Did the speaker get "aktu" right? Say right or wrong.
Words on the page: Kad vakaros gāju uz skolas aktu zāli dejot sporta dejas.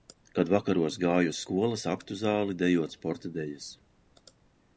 right